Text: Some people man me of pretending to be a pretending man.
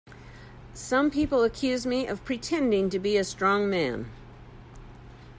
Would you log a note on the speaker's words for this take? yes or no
yes